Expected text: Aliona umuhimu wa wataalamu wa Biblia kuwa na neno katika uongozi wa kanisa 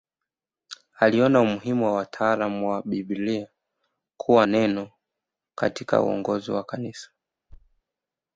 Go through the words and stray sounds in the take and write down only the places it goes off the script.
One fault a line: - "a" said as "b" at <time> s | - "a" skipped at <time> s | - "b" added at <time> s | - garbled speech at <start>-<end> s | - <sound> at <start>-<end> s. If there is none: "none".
- "na" skipped at 4.5 s
- thud at 7.5-7.8 s